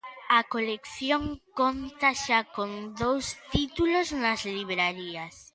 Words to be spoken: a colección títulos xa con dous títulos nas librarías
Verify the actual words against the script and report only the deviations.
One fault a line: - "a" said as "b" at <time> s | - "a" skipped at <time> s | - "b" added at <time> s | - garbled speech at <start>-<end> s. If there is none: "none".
- "títulos" said as "conta" at 1.6 s